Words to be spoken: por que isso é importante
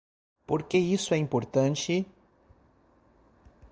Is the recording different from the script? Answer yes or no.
no